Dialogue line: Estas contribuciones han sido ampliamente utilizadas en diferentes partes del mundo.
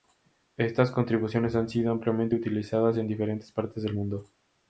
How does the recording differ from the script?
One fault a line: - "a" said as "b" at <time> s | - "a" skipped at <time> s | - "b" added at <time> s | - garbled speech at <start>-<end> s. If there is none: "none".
none